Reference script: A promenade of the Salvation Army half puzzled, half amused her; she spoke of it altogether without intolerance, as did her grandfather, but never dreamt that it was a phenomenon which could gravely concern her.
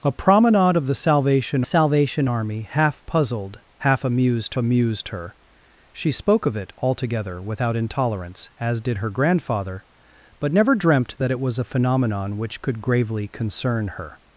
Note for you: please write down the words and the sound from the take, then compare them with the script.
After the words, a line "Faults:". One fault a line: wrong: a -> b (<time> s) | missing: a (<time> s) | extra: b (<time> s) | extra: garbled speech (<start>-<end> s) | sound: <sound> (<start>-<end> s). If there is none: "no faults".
A promenade of the Salvation Salvation Army half puzzled, half amused amused her; she spoke of it altogether without intolerance, as did her grandfather, but never dreamt that it was a phenomenon which could gravely concern her.
Faults:
extra: Salvation (1.6 s)
extra: amused (4.5 s)